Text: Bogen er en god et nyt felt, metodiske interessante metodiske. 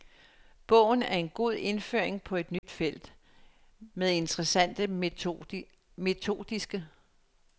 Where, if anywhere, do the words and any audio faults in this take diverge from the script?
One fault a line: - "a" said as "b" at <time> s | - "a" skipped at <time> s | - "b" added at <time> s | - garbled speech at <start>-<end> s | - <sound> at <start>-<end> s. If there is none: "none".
- "indføring på" added at 1.5 s
- dropout at 2.6-2.6 s
- "metodiske" said as "med" at 3.9 s